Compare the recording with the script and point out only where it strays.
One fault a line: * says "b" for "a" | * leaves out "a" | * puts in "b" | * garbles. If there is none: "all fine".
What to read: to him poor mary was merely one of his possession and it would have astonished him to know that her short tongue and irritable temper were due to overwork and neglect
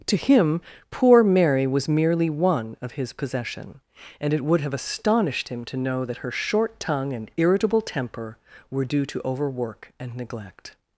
all fine